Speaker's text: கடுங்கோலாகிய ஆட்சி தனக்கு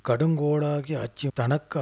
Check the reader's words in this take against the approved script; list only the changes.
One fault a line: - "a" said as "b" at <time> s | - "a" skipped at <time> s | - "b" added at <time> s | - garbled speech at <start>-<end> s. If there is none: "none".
none